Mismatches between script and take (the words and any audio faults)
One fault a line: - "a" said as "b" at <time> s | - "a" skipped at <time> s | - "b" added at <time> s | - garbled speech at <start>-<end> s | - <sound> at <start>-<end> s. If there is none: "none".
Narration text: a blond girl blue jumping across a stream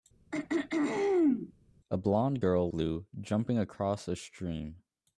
- throat clearing at 0.3-1.5 s